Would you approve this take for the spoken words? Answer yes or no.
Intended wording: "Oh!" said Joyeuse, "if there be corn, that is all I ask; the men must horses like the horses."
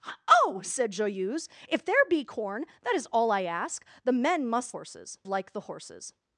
yes